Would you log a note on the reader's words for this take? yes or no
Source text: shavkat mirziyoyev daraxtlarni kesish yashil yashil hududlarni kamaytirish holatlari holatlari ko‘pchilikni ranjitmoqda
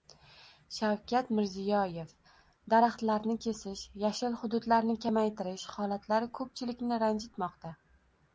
yes